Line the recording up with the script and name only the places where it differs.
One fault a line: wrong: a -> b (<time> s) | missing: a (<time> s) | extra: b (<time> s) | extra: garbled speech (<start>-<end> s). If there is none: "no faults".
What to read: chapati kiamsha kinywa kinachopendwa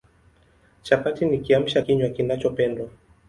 extra: ni (1.2 s)